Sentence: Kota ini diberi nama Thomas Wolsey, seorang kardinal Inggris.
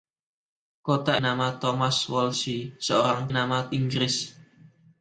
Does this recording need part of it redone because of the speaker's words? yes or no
yes